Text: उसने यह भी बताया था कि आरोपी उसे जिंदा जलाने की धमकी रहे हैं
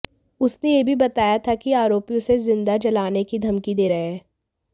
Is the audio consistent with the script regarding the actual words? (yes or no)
no